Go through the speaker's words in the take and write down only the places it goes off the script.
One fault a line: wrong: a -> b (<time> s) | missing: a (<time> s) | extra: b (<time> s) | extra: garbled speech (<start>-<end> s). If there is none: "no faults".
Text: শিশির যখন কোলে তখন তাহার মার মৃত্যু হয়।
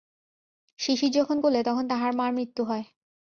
no faults